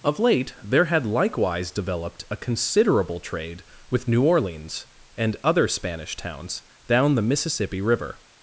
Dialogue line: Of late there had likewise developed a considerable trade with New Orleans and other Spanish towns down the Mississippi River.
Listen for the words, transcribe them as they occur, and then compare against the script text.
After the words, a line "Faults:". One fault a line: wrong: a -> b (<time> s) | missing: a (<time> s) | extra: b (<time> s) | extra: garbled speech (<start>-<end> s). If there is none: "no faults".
Of late there had likewise developed a considerable trade with New Orleans and other Spanish towns down the Mississippi River.
Faults:
no faults